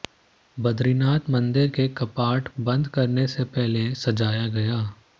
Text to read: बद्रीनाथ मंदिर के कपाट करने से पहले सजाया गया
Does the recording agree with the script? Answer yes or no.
no